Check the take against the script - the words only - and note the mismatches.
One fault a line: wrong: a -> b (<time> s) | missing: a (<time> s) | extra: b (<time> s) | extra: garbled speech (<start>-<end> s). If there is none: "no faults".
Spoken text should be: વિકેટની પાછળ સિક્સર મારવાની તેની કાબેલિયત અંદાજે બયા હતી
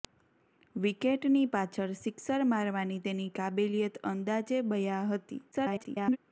extra: garbled speech (5.5-6.2 s)